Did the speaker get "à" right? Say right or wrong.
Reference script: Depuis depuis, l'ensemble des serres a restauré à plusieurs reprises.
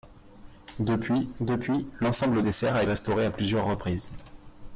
right